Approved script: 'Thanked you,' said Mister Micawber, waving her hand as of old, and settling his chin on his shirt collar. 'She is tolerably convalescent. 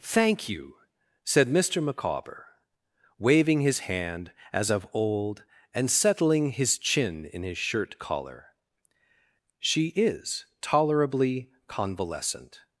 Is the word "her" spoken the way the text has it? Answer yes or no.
no